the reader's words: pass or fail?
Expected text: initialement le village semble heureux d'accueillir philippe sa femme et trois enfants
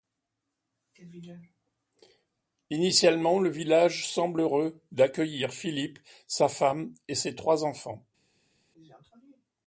fail